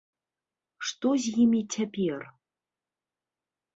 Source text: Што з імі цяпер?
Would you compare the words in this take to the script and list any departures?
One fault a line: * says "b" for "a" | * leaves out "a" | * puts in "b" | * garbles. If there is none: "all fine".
all fine